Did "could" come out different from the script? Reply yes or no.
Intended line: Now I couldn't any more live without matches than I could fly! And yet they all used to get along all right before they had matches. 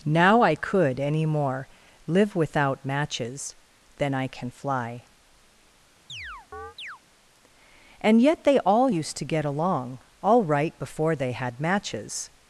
yes